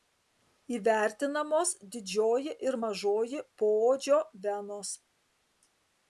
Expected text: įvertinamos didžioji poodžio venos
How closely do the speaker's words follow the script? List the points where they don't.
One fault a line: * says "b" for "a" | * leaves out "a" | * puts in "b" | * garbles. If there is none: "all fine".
* puts in "ir mažoji"